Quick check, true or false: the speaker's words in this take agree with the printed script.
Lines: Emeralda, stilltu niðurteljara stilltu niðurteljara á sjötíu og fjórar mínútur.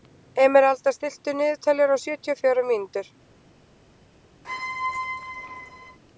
false